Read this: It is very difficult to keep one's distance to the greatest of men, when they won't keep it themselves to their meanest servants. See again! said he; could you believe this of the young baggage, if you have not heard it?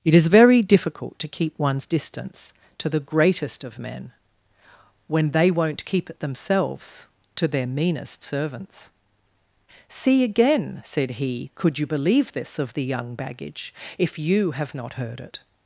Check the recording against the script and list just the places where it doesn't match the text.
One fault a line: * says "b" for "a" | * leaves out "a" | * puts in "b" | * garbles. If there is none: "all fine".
all fine